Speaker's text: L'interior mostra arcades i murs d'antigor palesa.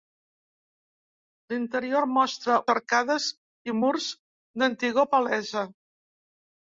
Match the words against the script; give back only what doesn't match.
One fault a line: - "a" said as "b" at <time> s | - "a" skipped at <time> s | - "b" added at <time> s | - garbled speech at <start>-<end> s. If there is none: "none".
none